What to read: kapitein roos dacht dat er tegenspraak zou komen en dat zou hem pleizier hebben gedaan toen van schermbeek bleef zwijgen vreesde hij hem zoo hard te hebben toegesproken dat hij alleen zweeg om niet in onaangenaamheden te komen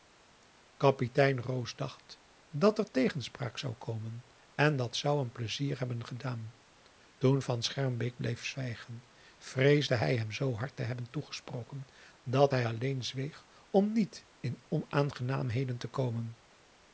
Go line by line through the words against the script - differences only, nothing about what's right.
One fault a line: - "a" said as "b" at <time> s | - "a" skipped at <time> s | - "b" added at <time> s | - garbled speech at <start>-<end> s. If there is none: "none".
none